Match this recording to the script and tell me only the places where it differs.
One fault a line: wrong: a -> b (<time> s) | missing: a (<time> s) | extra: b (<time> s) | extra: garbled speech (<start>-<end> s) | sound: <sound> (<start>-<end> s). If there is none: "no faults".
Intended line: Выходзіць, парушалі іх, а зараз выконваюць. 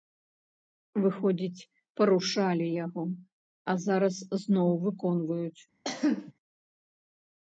wrong: іх -> яго (2.9 s)
extra: зноў (4.5 s)
sound: cough (5.8-6.3 s)